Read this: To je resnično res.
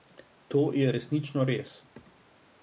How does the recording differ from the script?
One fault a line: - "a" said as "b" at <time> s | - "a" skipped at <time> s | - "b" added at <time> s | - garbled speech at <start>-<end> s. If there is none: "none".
none